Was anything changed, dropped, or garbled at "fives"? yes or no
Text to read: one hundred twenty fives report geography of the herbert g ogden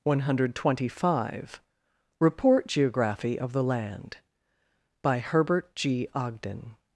yes